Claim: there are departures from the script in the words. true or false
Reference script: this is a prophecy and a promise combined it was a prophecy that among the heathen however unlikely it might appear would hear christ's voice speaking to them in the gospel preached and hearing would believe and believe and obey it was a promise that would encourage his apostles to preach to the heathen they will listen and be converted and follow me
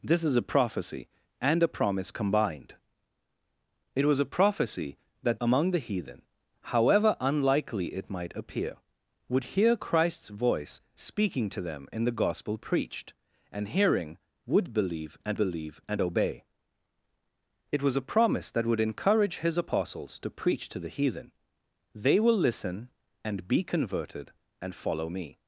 false